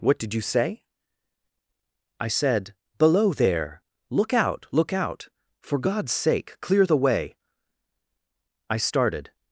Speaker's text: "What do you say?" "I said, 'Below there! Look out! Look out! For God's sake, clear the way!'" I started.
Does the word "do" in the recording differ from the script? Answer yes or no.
yes